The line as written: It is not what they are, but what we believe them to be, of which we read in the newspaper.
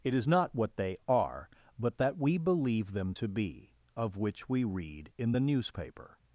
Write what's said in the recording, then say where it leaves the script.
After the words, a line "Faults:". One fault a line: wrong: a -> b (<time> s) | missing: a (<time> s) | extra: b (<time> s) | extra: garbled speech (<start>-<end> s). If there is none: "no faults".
It is not what they are, but that we believe them to be, of which we read in the newspaper.
Faults:
wrong: what -> that (2.0 s)